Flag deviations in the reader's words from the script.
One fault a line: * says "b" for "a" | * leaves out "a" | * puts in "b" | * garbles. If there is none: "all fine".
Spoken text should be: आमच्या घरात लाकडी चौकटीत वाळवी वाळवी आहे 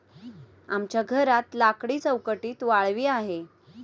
* leaves out "वाळवी"